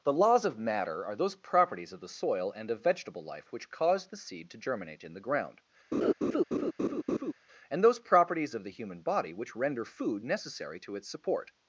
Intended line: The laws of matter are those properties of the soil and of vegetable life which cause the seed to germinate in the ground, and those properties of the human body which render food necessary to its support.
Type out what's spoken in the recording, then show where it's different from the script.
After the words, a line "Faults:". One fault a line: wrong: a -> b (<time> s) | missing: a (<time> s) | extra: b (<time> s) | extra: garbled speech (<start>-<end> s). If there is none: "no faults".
The laws of matter are those properties of the soil and of vegetable life which cause the seed to germinate in the ground, and those properties of the human body which render food necessary to its support.
Faults:
no faults